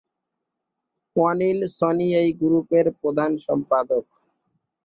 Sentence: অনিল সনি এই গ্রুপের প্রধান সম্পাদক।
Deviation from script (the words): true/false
false